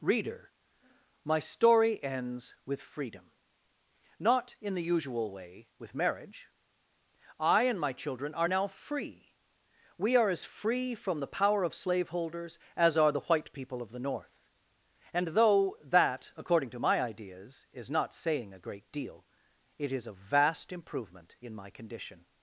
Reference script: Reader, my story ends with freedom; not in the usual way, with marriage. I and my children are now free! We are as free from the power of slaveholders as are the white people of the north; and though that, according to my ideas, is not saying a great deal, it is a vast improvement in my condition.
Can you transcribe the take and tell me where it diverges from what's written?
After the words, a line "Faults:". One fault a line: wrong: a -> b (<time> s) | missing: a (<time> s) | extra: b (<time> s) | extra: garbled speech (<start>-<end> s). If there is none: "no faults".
Reader, my story ends with freedom; not in the usual way, with marriage. I and my children are now free! We are as free from the power of slaveholders as are the white people of the north; and though that, according to my ideas, is not saying a great deal, it is a vast improvement in my condition.
Faults:
no faults